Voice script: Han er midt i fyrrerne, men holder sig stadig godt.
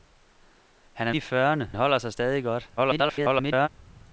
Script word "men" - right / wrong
wrong